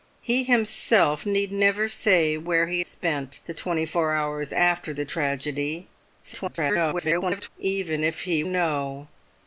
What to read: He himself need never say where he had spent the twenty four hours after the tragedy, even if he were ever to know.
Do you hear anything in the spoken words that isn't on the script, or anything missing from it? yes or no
yes